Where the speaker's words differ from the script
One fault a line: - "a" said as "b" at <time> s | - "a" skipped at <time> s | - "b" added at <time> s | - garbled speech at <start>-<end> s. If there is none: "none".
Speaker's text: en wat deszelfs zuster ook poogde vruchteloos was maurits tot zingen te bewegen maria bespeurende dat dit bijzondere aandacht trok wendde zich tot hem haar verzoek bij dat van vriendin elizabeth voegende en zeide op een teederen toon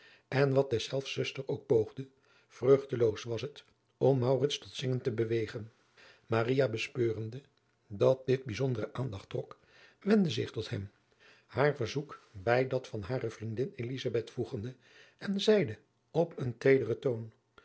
- "het om" added at 3.4 s
- "hare" added at 13.0 s